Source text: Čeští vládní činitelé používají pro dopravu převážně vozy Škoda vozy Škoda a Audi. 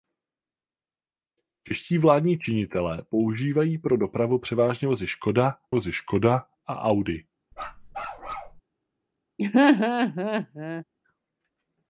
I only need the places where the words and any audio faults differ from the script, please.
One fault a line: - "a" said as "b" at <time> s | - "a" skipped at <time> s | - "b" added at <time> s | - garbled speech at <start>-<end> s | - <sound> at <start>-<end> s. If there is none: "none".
- bark at 7.5-8.6 s
- laugh at 9.4-10.8 s